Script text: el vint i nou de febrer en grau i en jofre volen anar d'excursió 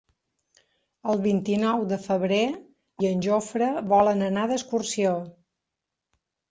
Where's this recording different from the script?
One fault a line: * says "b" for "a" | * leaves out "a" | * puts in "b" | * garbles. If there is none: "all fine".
* leaves out "en grau"